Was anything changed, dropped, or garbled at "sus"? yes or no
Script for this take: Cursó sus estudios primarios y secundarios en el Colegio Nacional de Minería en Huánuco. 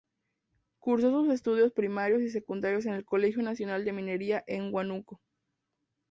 no